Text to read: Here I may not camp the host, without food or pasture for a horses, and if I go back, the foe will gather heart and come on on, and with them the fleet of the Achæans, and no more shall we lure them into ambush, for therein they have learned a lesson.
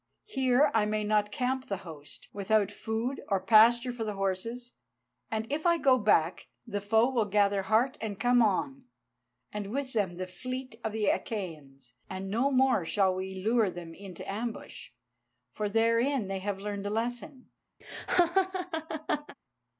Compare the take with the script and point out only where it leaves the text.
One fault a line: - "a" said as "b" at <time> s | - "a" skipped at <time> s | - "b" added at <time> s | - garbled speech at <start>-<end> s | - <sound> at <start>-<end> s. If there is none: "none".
- "a" said as "the" at 4.0 s
- "on" skipped at 8.9 s
- laugh at 17.8-19.4 s